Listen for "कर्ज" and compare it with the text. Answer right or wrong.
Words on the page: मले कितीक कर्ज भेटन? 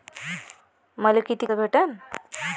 wrong